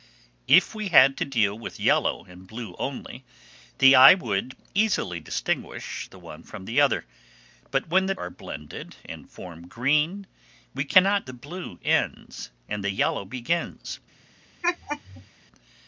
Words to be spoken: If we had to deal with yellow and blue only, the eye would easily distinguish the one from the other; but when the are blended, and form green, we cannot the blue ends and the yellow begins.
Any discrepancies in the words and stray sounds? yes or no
yes